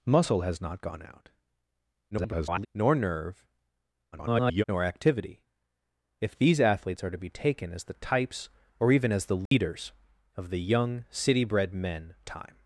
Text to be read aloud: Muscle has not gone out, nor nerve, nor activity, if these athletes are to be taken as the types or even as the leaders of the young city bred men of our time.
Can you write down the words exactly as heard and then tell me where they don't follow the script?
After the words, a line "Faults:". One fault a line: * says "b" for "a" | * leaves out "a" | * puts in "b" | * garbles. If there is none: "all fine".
Muscle has not gone out, [garbled] nor nerve, [garbled] nor activity, if these athletes are to be taken as the types or even as the leaders of the young city bred men time.
Faults:
* garbles
* garbles
* leaves out "of our"